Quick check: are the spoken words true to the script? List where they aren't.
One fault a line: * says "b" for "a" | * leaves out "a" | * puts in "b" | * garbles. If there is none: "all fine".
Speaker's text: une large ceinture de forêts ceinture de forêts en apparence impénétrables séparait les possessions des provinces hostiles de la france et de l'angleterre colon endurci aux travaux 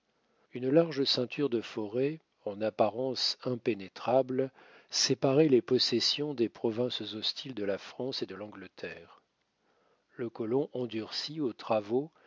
* leaves out "ceinture de forêts"
* puts in "le"